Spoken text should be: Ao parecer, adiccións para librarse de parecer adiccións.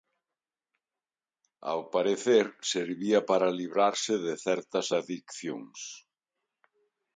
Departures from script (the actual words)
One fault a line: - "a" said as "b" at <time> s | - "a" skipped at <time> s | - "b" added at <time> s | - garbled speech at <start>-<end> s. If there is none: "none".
- "adiccións" said as "servía" at 2.7 s
- "parecer" said as "certas" at 4.5 s